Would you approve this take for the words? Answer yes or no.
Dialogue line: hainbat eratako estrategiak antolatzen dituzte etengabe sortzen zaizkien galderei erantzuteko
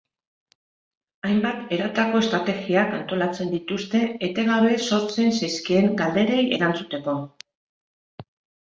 yes